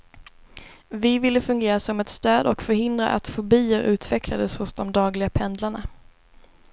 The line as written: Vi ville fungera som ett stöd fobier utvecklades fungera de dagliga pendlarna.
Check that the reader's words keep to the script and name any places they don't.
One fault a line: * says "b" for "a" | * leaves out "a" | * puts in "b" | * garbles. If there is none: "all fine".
* puts in "och förhindra att"
* says "hos" for "fungera"